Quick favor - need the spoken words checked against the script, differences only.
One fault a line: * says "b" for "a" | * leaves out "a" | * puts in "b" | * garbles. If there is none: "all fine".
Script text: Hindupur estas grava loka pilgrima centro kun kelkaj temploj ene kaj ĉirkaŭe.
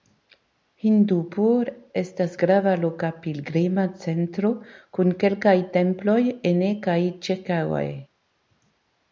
all fine